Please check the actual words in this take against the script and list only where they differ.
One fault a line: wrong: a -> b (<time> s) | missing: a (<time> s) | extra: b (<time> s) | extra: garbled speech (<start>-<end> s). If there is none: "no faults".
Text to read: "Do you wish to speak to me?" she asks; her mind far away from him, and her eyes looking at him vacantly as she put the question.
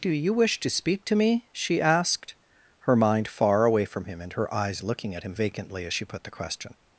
wrong: asks -> asked (1.8 s)